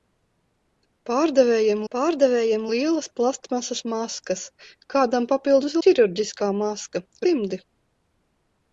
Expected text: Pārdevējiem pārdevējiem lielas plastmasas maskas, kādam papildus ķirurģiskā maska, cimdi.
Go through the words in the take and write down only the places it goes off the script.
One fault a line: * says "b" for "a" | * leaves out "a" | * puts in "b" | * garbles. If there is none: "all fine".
all fine